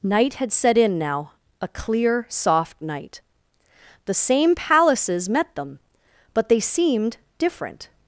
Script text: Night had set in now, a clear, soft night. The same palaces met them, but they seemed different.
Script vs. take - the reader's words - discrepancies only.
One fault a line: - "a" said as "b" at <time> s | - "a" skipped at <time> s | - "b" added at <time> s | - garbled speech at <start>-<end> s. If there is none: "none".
none